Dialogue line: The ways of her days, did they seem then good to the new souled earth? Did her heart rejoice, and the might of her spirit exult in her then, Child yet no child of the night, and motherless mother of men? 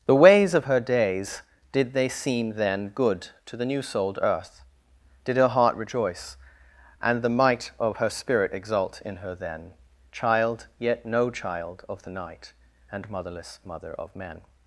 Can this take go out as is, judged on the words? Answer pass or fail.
pass